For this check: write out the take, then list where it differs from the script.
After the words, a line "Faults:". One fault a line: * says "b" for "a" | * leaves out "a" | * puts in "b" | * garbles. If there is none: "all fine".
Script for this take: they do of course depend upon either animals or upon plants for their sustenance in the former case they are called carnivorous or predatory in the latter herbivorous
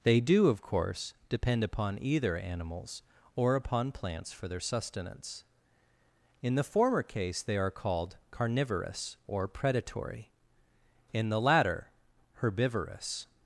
they do of course depend upon either animals or upon plants for their sustenance in the former case they are called carnivorous or predatory in the latter herbivorous
Faults:
all fine